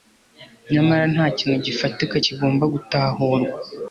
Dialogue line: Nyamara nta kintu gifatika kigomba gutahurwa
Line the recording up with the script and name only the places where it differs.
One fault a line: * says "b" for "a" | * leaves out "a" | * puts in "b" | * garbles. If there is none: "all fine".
all fine